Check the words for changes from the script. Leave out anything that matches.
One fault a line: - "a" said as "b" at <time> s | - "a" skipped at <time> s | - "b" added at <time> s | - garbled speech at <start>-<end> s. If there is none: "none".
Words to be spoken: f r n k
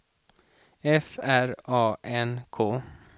- "a" added at 1.7 s